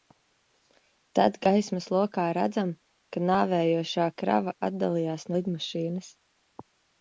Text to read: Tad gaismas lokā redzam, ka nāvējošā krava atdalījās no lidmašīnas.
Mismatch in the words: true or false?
true